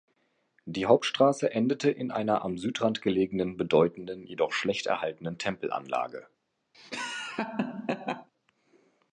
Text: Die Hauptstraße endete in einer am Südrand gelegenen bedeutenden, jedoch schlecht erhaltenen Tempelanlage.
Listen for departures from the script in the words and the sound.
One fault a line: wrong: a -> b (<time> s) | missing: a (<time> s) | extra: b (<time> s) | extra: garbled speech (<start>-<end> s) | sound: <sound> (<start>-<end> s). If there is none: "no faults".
sound: laugh (6.7-8.3 s)